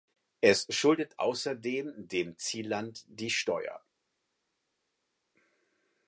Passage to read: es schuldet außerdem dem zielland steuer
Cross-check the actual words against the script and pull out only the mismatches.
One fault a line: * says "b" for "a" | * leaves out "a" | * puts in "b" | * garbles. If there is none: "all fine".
* puts in "die"